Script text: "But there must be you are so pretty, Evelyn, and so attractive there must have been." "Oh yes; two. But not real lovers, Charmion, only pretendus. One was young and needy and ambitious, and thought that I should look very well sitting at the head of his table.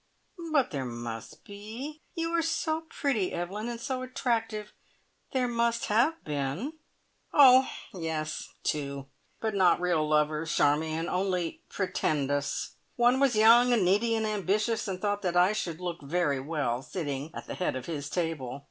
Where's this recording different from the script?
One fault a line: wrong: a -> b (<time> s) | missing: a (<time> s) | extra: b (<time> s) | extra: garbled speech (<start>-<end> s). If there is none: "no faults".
no faults